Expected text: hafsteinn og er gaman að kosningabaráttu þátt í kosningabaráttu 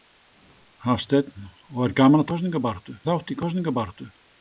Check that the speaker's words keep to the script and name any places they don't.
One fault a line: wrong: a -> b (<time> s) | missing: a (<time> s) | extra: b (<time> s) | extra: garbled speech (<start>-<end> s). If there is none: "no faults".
no faults